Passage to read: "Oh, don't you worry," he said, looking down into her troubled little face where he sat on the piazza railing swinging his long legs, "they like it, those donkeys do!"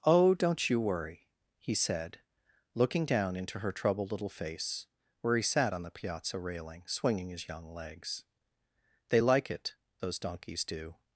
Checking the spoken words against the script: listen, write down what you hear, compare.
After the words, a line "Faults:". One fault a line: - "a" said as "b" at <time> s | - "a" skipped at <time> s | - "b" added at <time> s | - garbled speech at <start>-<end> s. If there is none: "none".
"Oh, don't you worry," he said, looking down into her troubled little face where he sat on the piazza railing swinging his young legs, "they like it, those donkeys do!"
Faults:
- "long" said as "young" at 7.5 s